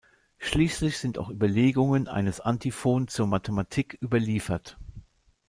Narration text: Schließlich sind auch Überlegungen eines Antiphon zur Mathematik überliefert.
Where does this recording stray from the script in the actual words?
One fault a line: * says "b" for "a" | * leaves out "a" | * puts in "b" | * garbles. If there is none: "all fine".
all fine